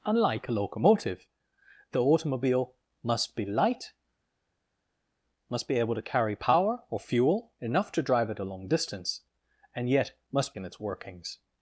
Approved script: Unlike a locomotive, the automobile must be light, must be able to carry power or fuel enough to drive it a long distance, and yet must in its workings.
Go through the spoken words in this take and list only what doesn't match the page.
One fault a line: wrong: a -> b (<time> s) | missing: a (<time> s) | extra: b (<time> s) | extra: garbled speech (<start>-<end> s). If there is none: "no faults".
no faults